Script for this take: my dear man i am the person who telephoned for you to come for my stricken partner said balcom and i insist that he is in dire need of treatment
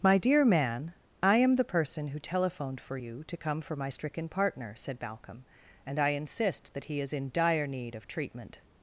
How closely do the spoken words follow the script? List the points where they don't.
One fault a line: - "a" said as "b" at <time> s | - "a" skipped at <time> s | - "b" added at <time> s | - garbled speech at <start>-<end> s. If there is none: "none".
none